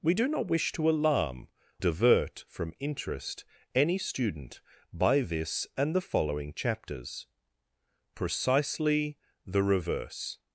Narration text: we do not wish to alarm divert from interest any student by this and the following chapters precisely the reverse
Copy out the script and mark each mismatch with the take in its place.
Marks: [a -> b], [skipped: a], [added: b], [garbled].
we do not wish to alarm divert from interest any student by this and the following chapters precisely the reverse